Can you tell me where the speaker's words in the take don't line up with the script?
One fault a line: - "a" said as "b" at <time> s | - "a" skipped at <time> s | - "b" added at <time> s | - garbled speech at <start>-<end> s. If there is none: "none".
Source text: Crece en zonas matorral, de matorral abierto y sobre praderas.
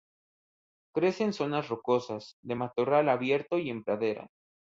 - "matorral" said as "rocosas" at 1.7 s
- "sobre" said as "en" at 3.7 s